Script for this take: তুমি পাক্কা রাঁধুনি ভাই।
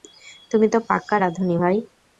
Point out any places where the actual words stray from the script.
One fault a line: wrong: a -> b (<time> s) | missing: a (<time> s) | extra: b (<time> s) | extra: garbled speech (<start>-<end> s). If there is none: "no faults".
extra: তো (0.7 s)